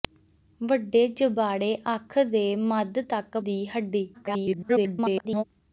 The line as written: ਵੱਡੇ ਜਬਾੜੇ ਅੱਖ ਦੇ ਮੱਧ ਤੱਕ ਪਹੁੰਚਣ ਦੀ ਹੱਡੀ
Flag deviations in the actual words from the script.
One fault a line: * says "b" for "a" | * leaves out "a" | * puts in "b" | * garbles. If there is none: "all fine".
* leaves out "ਪਹੁੰਚਣ"
* garbles